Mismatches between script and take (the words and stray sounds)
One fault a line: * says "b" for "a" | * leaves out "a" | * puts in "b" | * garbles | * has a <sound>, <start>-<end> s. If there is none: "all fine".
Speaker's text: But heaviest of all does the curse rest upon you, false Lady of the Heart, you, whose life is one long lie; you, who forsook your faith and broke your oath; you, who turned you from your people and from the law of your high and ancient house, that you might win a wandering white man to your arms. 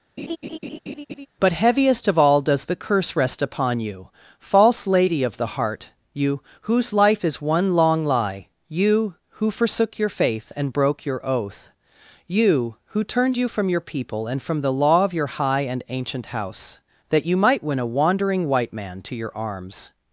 * has a laugh, 0.2-1.3 s